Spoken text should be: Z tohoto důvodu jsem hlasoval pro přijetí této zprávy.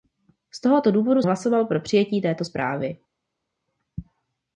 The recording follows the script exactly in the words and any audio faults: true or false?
false